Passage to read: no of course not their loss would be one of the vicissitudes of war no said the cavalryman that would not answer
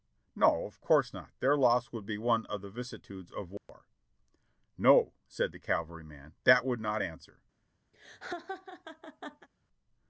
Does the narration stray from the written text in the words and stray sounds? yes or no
yes